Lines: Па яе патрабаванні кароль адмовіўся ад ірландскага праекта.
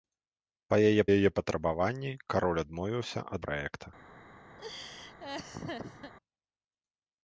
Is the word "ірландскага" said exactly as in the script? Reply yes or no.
no